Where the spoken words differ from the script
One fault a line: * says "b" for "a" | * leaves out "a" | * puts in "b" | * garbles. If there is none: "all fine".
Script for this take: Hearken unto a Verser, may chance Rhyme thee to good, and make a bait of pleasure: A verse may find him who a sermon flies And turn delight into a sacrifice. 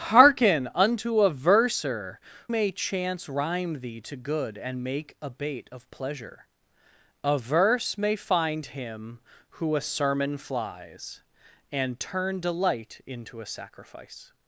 all fine